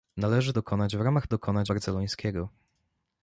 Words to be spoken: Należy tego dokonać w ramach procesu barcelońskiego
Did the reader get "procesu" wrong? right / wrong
wrong